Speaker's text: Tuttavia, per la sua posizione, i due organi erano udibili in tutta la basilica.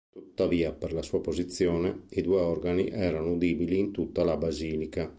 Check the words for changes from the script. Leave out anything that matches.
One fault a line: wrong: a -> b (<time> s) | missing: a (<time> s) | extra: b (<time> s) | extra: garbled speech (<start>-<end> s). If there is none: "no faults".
no faults